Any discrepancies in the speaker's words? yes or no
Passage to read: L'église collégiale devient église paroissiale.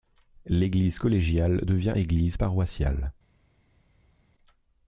no